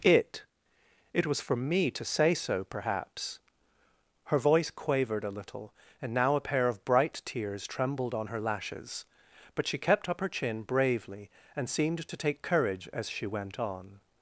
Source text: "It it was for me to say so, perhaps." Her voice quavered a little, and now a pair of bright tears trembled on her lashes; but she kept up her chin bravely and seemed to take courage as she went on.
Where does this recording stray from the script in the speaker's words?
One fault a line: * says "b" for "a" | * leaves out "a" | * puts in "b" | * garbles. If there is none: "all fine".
all fine